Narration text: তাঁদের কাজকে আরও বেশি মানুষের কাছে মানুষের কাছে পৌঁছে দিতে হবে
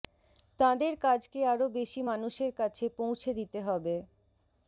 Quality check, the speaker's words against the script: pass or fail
fail